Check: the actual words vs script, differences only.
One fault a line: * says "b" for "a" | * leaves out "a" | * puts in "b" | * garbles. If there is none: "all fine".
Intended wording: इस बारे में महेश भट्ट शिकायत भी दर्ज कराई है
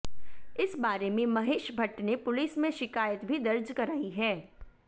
* puts in "ने पुलिस में"